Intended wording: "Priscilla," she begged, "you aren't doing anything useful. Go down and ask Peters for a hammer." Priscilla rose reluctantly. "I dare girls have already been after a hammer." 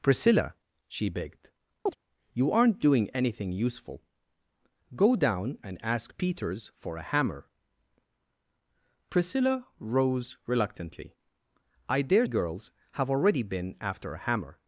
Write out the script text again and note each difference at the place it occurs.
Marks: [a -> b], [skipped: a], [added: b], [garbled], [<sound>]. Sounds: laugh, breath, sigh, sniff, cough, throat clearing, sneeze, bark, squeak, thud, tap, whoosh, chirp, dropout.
"Priscilla," she begged, [chirp] "you aren't doing anything useful. Go down and ask Peters for a hammer." Priscilla rose reluctantly. "I dare girls have already been after a hammer."